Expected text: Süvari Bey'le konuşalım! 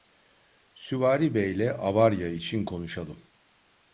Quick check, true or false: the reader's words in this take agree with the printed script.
false